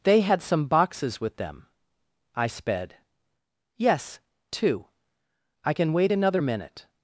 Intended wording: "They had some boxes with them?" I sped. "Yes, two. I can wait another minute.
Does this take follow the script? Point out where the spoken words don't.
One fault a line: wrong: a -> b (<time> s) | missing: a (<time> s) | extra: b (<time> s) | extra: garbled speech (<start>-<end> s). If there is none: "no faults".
no faults